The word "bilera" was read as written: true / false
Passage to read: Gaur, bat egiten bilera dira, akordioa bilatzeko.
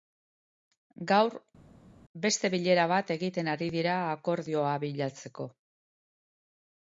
false